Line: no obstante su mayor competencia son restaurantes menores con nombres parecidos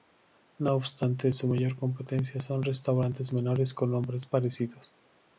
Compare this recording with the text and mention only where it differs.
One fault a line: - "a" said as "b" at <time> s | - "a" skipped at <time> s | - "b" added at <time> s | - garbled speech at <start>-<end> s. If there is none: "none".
none